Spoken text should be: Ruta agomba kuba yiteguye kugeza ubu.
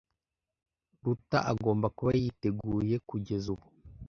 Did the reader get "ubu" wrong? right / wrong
right